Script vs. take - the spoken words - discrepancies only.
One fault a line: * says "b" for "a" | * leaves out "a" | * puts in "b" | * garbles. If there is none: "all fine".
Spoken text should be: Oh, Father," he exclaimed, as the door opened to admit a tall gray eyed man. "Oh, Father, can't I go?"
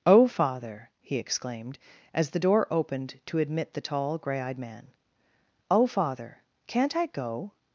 * says "the" for "a"